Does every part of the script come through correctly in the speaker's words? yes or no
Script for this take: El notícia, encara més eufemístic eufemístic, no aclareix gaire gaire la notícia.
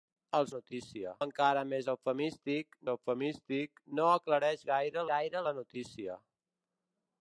yes